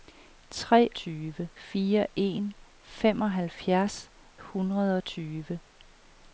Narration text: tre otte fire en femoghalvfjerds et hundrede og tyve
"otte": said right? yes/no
no